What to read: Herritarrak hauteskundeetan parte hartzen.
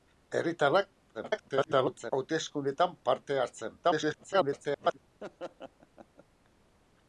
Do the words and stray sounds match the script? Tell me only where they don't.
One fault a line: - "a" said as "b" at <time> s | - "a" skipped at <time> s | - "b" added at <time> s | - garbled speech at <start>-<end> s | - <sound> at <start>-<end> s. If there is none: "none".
- garbled speech at 1.1-2.1 s
- garbled speech at 3.8-5.0 s
- laugh at 5.2-6.2 s